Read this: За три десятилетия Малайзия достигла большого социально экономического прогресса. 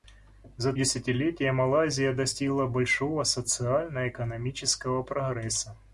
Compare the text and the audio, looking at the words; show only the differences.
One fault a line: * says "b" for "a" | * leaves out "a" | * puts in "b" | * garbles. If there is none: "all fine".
* leaves out "три"